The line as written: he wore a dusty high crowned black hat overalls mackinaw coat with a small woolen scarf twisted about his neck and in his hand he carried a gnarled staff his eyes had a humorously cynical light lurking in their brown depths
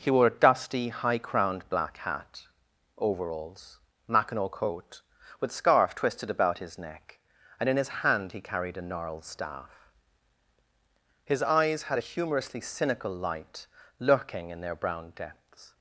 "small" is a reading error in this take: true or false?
true